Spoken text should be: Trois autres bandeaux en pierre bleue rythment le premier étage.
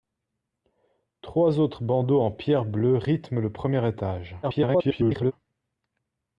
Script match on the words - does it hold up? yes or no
no